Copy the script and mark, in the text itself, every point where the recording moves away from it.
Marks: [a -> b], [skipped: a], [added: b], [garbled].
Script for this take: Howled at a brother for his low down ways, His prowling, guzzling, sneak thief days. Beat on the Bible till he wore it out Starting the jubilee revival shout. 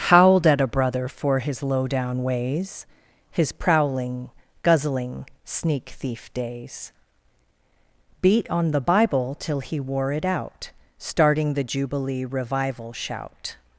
Howled at a brother for his low down ways, His prowling, guzzling, sneak thief days. Beat on the Bible till he wore it out Starting the jubilee revival shout.